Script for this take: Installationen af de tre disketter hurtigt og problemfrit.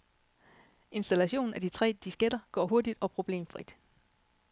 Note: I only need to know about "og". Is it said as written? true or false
true